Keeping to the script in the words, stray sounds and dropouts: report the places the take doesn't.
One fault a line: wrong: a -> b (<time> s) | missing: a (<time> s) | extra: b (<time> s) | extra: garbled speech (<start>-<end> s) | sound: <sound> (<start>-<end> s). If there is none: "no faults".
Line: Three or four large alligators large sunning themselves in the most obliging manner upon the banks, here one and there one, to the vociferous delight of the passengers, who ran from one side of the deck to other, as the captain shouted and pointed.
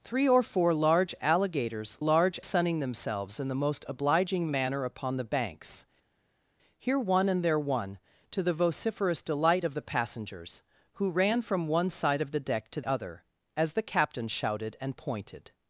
no faults